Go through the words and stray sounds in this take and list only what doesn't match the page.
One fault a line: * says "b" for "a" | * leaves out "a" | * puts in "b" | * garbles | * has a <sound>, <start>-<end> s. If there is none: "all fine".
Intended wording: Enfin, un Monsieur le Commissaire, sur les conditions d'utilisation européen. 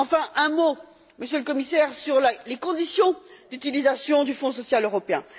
* puts in "mot"
* puts in "du Fonds social"